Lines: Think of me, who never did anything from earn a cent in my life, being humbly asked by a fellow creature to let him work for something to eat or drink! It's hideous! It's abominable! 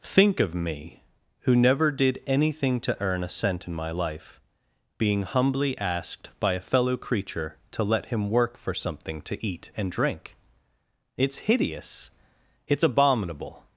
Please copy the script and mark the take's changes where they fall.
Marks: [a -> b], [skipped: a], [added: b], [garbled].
Think of me, who never did anything [from -> to] earn a cent in my life, being humbly asked by a fellow creature to let him work for something to eat [or -> and] drink! It's hideous! It's abominable!